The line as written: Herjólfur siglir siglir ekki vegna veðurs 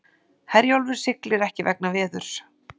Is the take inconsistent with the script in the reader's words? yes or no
yes